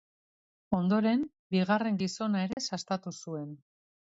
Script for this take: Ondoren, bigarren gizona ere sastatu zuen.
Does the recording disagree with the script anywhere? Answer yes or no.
no